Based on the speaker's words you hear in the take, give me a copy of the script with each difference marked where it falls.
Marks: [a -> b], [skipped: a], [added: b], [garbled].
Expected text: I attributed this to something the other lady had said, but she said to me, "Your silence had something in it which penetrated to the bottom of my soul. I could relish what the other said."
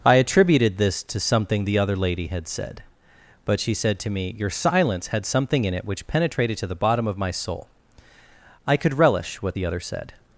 I attributed this to something the other lady had said, but she said to me, "Your silence had something in it which penetrated to the bottom of my soul. I could relish what the other said."